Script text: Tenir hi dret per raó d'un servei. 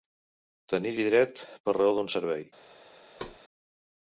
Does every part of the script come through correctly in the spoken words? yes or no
yes